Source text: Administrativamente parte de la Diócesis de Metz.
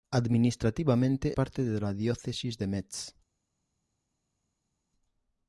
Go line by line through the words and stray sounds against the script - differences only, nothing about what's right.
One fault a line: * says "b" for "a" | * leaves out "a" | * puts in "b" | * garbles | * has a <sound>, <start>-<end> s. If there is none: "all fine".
all fine